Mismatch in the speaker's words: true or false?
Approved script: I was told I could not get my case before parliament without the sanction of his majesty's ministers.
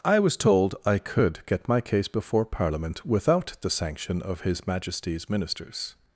true